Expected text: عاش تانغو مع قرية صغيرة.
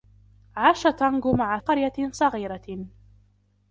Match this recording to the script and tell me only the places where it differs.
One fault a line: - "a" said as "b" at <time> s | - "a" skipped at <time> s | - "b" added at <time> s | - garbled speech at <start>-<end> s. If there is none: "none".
none